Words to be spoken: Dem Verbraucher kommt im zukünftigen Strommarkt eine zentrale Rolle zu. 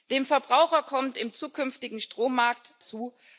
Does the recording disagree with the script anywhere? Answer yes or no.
yes